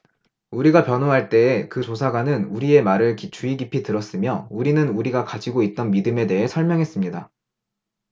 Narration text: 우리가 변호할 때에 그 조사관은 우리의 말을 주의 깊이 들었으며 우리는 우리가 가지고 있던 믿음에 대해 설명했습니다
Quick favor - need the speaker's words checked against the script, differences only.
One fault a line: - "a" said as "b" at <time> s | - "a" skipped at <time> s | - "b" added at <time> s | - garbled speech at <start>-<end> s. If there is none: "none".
none